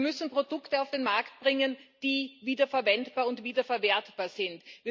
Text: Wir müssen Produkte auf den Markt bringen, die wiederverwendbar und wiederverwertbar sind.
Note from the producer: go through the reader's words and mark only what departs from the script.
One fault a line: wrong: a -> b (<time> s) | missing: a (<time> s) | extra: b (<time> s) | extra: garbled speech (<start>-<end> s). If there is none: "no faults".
no faults